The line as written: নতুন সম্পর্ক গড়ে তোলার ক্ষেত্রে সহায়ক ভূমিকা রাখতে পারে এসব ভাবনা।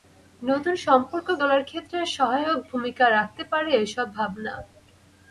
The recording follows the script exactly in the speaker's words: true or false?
false